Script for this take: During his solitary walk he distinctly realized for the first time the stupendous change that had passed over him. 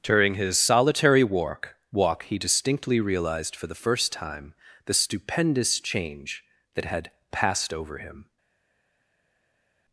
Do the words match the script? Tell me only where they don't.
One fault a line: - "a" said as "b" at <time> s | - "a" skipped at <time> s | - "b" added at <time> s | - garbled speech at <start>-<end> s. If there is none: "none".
- "walk" added at 1.9 s